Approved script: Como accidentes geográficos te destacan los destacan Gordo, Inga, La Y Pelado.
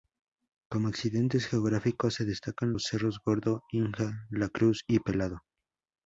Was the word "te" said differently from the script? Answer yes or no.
yes